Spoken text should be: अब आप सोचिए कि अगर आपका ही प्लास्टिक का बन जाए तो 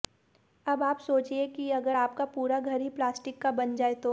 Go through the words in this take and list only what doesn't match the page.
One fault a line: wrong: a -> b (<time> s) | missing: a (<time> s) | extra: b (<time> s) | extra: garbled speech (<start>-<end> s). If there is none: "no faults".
extra: पूरा घर (2.2 s)